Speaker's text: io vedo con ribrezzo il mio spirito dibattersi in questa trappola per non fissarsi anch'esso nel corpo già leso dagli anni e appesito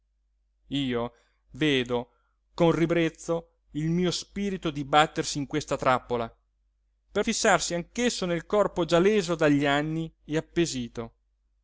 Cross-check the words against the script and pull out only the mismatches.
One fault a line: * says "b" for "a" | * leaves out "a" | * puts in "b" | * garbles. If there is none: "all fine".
* leaves out "non"